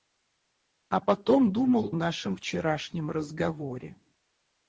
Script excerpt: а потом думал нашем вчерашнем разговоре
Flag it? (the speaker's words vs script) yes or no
no